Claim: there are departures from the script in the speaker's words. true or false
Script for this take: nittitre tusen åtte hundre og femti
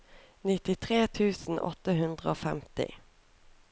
false